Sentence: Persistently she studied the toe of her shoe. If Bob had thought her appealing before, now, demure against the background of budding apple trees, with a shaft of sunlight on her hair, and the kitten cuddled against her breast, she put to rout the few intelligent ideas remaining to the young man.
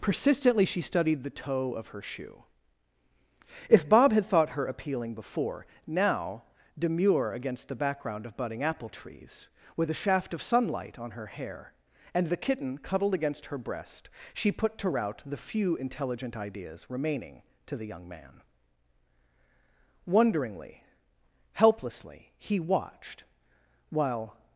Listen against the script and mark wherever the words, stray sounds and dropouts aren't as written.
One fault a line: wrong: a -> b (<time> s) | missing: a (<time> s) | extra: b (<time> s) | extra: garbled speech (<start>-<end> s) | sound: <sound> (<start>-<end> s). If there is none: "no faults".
extra: Wonderingly helplessly he watched while (20.0 s)